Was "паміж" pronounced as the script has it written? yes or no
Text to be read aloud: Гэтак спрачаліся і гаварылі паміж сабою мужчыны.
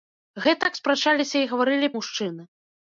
no